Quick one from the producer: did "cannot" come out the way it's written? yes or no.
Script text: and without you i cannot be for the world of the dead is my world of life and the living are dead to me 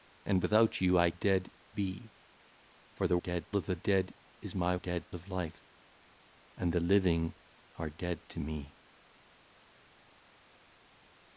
no